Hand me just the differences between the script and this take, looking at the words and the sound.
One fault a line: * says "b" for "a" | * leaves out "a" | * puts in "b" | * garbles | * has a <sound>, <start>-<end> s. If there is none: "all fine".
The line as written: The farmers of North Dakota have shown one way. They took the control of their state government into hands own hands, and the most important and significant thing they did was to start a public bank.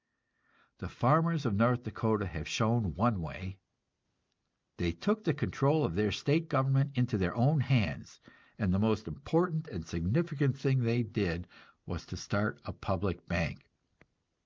* says "their" for "hands"